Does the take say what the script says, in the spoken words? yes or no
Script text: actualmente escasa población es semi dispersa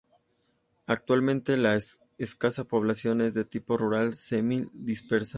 no